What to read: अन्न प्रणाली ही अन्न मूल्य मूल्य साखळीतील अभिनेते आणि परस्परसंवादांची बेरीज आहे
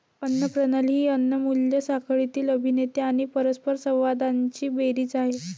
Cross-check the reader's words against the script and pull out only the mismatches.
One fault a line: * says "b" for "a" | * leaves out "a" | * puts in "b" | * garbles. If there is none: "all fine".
* leaves out "मूल्य"